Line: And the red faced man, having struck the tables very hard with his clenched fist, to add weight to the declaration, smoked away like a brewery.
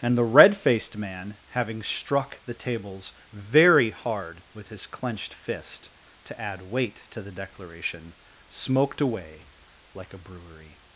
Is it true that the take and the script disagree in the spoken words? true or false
false